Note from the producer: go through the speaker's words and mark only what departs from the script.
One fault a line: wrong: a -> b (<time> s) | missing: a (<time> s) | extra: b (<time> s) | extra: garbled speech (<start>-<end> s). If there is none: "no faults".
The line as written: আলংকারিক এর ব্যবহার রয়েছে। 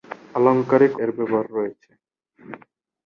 no faults